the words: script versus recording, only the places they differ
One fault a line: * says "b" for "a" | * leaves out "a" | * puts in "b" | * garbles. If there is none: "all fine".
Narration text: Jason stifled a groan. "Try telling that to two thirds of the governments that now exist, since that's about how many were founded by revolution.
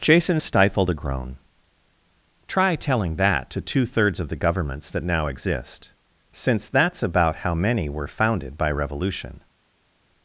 all fine